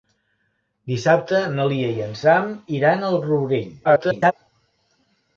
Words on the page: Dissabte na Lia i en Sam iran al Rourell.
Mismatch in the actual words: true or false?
true